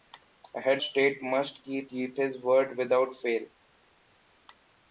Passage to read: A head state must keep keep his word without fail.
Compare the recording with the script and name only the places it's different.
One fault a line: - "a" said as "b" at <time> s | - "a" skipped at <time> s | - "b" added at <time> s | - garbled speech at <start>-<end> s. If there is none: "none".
none